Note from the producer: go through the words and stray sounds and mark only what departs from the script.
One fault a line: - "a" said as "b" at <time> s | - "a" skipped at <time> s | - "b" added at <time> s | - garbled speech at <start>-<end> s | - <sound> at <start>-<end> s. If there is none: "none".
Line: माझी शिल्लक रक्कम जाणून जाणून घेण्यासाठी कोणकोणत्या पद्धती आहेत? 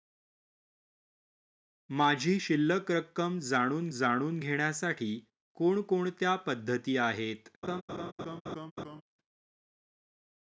- laugh at 7.6-9.0 s